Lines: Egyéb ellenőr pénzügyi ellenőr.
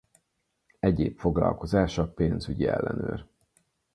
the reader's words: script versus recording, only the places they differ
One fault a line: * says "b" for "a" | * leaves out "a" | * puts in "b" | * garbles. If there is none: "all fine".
* says "foglalkozása" for "ellenőr"